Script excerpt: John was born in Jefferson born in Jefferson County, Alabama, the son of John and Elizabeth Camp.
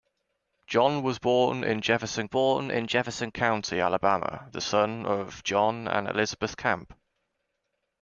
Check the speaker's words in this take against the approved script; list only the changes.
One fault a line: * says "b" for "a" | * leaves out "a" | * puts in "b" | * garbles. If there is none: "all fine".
all fine